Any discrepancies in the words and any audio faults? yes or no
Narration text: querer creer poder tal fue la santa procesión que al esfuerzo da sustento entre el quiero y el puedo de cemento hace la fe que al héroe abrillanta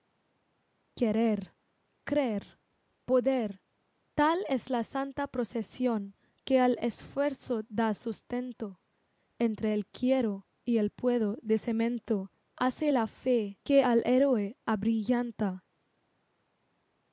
yes